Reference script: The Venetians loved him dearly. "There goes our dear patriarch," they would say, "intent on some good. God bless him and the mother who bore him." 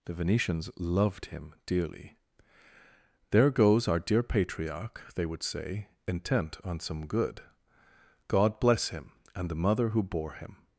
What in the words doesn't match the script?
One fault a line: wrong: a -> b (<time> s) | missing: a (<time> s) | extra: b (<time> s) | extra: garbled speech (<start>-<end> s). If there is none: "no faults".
no faults